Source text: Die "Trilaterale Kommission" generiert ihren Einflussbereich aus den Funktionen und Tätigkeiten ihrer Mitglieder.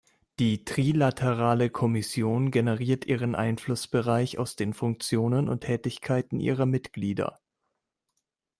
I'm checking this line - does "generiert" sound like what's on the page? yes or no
yes